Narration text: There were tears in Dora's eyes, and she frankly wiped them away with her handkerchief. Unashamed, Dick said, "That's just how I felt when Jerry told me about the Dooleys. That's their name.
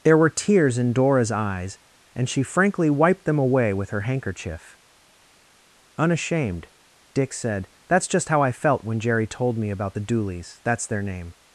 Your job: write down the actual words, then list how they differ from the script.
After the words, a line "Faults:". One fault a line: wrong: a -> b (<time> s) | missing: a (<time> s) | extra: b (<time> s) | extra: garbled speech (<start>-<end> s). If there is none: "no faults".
There were tears in Dora's eyes, and she frankly wiped them away with her handkerchief. Unashamed, Dick said, "That's just how I felt when Jerry told me about the Dooleys. That's their name.
Faults:
no faults